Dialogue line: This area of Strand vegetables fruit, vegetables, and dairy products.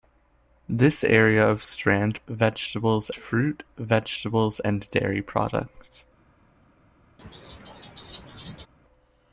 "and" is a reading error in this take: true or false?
false